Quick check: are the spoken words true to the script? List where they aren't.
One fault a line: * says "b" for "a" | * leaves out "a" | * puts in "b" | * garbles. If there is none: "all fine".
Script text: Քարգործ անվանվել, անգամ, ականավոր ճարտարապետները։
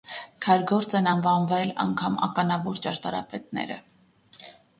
* puts in "են"